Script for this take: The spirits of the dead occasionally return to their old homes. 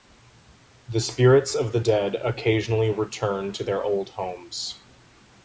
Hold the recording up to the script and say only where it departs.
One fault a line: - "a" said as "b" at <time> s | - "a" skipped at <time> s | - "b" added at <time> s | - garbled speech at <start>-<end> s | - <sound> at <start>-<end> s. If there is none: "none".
none